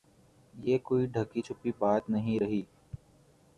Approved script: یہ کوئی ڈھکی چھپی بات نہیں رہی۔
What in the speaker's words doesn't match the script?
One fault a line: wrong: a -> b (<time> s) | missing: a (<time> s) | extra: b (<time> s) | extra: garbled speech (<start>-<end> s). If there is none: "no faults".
no faults